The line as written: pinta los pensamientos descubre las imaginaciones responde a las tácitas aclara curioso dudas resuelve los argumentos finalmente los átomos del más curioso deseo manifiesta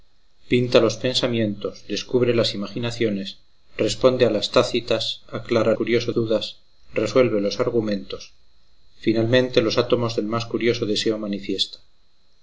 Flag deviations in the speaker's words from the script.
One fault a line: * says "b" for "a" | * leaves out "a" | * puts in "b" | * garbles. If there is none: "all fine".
all fine